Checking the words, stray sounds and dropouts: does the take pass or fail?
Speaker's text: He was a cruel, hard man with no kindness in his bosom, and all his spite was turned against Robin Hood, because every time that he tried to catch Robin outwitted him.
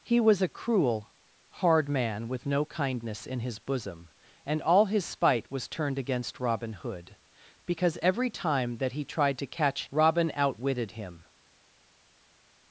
pass